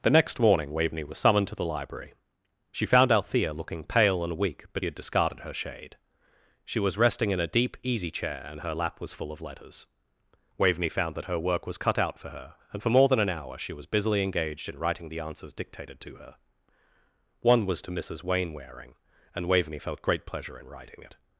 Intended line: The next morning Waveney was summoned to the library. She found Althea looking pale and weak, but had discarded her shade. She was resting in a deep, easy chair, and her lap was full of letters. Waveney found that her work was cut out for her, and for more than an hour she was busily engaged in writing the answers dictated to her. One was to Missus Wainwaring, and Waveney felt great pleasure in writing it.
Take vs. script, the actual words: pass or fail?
pass